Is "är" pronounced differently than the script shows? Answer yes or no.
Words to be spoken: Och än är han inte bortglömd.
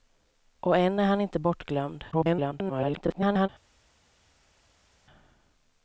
no